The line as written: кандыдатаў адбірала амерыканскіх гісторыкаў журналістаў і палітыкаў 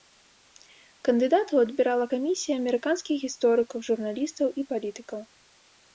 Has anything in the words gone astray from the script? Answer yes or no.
yes